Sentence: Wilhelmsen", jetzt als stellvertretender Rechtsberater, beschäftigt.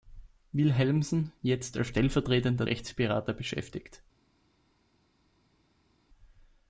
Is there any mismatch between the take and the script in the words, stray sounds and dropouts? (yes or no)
no